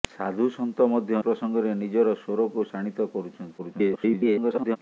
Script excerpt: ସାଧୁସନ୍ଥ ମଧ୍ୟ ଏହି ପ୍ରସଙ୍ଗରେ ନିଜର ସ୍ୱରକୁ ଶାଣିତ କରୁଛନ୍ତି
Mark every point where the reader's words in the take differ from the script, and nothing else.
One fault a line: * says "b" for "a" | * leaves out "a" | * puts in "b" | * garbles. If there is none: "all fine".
* leaves out "ଏହି"
* garbles